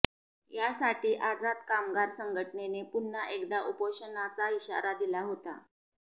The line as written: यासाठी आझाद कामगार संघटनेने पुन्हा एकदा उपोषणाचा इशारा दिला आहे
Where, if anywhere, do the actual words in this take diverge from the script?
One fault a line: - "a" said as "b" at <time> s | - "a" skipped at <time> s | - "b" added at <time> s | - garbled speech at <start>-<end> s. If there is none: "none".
- "आहे" said as "होता" at 5.2 s